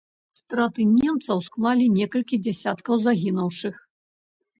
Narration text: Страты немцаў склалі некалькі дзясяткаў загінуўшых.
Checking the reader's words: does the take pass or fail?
pass